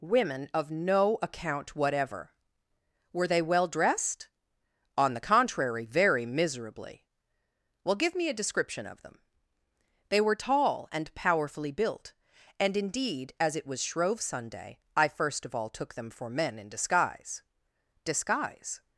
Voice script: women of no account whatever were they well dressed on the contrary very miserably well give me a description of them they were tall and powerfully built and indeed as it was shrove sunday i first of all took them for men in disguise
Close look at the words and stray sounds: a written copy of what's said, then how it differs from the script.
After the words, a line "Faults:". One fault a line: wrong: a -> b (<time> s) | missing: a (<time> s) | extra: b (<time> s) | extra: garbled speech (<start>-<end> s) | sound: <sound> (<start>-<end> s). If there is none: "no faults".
women of no account whatever were they well dressed on the contrary very miserably well give me a description of them they were tall and powerfully built and indeed as it was shrove sunday i first of all took them for men in disguise disguise
Faults:
extra: disguise (18.0 s)